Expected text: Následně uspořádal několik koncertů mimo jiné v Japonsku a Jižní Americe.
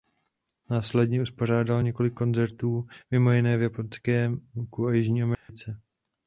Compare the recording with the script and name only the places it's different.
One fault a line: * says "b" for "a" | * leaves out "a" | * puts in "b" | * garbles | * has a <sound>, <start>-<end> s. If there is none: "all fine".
* has a dropout, 5.3-5.5 s